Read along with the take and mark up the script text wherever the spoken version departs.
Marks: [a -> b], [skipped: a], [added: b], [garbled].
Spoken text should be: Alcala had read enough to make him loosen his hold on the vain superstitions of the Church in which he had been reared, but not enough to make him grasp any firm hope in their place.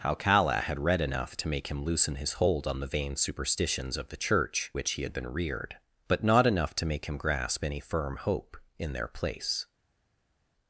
Alcala had read enough to make him loosen his hold on the vain superstitions of the Church [skipped: in] which he had been reared, but not enough to make him grasp any firm hope in their place.